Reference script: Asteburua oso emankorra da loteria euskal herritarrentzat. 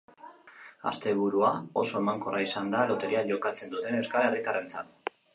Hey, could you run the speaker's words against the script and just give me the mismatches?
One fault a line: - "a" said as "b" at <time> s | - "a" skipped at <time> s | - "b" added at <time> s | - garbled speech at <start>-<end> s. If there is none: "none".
- "izan" added at 2.5 s
- "jokatzen duten" added at 3.3 s